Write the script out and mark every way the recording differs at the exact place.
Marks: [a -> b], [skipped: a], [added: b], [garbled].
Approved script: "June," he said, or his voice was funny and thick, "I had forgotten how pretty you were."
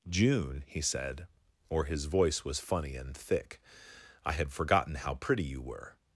"June," he said, or his voice was funny and thick, "I had forgotten how pretty you were."